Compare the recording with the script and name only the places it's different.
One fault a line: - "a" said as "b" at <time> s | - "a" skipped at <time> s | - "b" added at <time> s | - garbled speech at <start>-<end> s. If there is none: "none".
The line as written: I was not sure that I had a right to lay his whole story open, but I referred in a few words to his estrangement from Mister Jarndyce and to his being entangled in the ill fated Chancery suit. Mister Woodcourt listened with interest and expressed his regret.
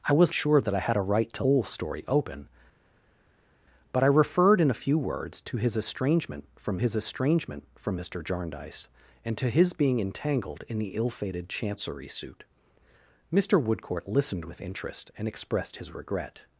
- "not" skipped at 0.3 s
- "lay his" skipped at 1.4 s
- "his estrangement from" added at 6.8 s